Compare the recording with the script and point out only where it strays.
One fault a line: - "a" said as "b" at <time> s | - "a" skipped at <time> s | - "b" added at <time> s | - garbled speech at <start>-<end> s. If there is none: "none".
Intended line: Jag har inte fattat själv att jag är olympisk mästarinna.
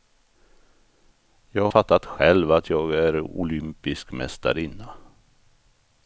- "har inte" skipped at 1.7 s